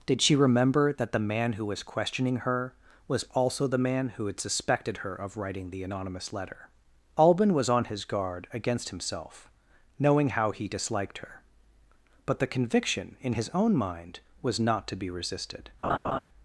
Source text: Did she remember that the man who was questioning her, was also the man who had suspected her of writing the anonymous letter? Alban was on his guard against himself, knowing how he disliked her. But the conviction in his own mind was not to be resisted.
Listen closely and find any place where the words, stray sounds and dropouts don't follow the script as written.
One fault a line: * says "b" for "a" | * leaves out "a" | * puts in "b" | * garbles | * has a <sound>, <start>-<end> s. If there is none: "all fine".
* has a laugh, 15.8-16.2 s